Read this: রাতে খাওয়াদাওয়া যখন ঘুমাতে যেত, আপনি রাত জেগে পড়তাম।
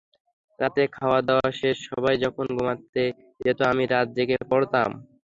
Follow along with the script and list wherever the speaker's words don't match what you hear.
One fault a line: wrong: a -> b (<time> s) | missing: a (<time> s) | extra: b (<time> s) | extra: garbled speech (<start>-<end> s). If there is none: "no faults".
extra: শেষে সবাই (1.5 s)
wrong: আপনি -> আমি (3.7 s)